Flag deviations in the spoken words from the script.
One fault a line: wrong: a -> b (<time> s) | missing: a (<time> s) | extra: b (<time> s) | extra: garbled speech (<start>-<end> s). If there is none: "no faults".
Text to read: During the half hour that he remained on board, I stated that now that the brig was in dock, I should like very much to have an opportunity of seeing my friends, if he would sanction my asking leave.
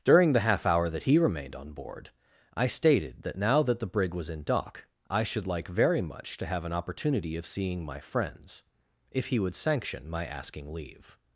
no faults